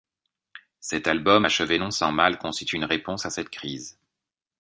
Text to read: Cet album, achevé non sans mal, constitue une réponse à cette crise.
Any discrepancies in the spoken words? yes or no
no